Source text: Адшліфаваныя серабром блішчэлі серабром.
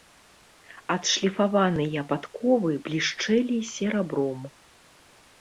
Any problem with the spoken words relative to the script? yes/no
yes